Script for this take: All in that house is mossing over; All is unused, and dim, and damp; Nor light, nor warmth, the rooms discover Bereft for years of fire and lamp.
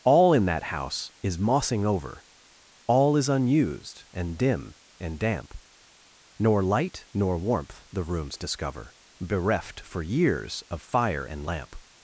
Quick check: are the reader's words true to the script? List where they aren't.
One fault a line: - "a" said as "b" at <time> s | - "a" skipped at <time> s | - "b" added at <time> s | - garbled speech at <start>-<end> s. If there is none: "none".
none